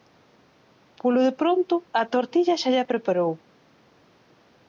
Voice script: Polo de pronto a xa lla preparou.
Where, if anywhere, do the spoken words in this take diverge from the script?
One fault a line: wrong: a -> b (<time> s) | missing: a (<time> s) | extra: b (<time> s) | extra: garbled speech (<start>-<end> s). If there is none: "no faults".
extra: tortilla (2.1 s)